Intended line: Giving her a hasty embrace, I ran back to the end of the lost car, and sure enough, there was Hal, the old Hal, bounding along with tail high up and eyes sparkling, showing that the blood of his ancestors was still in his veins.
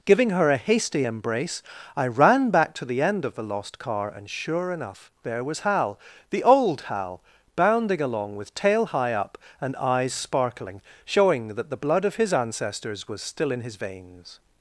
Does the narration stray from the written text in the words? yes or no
no